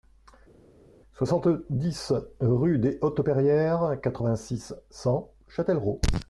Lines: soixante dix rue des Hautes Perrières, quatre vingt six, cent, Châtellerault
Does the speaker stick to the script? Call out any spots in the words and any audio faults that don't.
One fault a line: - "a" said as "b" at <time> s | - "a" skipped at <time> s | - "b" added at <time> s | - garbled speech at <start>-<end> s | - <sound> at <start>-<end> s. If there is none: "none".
none